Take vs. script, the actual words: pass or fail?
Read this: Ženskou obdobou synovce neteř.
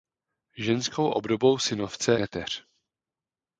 pass